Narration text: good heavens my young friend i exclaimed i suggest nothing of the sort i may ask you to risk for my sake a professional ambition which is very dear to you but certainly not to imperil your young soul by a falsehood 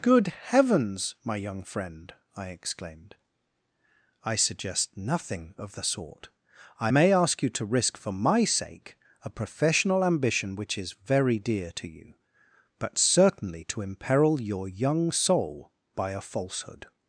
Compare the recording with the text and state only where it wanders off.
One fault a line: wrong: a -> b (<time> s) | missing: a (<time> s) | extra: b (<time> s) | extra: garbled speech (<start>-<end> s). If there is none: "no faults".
missing: not (13.6 s)